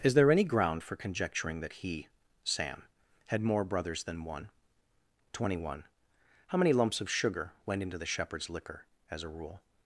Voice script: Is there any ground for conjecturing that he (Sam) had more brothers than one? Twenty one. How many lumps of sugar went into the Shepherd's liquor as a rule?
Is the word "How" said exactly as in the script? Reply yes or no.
yes